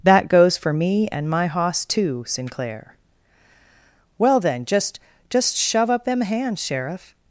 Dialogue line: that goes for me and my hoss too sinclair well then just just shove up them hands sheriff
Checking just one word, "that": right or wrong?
right